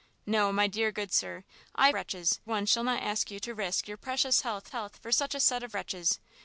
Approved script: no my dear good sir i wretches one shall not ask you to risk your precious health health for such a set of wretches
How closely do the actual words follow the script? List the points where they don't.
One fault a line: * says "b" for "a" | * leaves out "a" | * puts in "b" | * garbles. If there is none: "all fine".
all fine